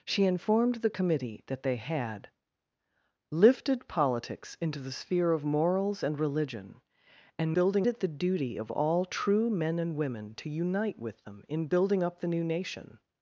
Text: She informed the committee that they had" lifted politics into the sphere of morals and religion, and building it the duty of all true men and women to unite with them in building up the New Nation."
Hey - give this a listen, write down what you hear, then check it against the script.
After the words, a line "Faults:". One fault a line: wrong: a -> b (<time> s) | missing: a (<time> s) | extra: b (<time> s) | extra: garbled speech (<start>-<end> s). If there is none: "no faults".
She informed the committee that they had" lifted politics into the sphere of morals and religion, and building it the duty of all true men and women to unite with them in building up the New Nation."
Faults:
no faults